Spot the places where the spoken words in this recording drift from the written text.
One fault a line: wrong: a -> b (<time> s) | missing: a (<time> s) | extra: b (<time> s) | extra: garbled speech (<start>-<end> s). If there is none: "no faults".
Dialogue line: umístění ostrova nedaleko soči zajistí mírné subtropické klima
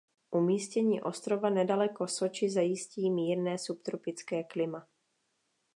no faults